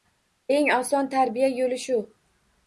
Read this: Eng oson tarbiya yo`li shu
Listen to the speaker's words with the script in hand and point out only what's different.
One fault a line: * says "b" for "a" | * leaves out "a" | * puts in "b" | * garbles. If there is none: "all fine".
all fine